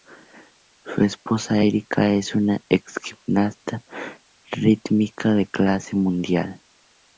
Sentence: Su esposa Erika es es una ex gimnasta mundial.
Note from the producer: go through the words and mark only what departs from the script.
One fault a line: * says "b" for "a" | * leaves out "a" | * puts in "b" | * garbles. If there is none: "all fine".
* leaves out "es"
* puts in "rítmica de clase"